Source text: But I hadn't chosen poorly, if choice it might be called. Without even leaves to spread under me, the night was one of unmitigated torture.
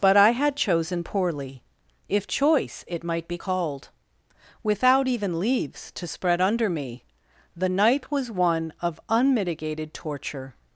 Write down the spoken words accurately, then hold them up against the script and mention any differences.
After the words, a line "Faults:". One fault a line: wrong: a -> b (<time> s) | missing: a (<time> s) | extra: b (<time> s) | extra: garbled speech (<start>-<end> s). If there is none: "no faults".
But I had chosen poorly, if choice it might be called. Without even leaves to spread under me, the night was one of unmitigated torture.
Faults:
wrong: hadn't -> had (0.3 s)